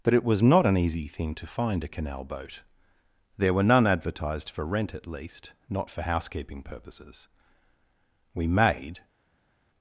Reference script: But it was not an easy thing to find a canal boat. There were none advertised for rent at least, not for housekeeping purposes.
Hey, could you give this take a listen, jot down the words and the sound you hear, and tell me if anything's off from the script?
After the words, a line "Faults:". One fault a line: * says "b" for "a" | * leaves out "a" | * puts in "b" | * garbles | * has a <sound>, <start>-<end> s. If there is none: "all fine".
But it was not an easy thing to find a canal boat. There were none advertised for rent at least, not for housekeeping purposes. We made
Faults:
* puts in "We made"